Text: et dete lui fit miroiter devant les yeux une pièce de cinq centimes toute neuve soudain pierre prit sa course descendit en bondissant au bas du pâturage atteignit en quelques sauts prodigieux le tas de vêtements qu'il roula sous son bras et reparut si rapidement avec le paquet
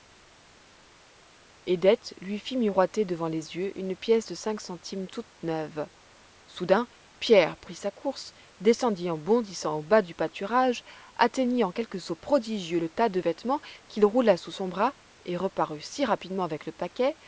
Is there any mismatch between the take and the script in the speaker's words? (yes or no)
no